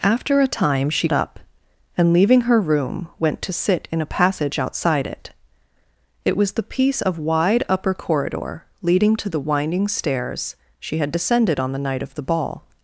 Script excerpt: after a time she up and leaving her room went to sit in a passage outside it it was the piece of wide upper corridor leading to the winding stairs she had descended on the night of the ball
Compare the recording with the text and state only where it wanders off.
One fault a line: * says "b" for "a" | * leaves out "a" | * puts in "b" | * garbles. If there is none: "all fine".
all fine